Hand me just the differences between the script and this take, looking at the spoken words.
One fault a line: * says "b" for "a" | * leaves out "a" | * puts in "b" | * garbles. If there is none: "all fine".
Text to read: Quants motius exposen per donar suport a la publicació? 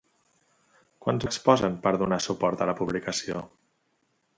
* leaves out "motius"